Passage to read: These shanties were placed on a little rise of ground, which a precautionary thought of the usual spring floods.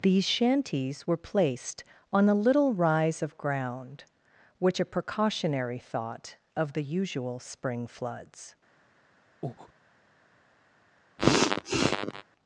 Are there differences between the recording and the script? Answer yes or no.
no